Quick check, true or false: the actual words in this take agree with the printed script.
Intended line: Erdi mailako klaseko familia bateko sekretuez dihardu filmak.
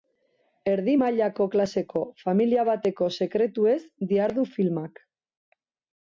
true